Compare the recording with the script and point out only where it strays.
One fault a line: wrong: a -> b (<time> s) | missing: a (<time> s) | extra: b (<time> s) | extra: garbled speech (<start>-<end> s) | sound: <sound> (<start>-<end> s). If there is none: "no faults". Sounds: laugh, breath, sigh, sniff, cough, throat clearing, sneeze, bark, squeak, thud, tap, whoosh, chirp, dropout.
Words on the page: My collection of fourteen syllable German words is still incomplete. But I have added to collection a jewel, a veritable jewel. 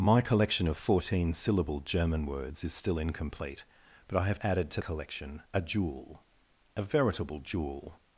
no faults